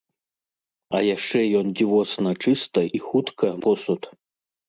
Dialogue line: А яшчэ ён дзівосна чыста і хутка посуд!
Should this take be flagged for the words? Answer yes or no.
no